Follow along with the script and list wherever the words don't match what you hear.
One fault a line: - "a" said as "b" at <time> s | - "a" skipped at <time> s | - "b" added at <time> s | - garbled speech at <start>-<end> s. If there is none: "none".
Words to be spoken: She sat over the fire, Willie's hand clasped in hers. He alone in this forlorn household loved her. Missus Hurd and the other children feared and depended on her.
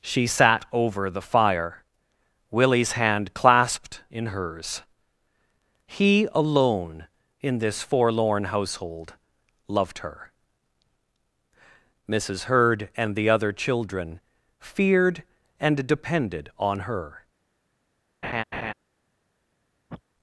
none